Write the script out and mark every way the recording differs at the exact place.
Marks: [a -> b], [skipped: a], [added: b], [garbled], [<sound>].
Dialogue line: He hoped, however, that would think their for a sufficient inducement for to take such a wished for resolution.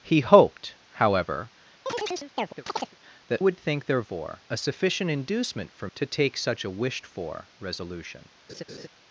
He hoped, however, [chirp] that would think their for a sufficient inducement for to take such a wished for resolution. [laugh]